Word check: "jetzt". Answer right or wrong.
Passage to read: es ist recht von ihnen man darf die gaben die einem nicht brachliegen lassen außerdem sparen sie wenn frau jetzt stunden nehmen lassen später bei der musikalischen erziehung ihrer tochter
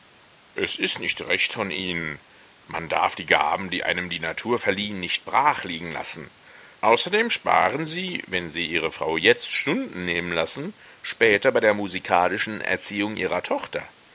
right